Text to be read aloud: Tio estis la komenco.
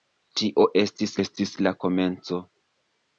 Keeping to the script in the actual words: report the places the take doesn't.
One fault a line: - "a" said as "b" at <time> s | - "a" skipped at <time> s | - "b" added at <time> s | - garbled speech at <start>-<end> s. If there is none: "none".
- "estis" added at 1.2 s